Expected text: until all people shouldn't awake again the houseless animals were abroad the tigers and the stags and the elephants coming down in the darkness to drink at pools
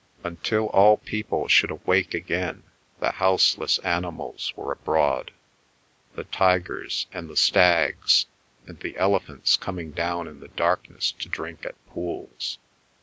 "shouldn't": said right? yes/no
no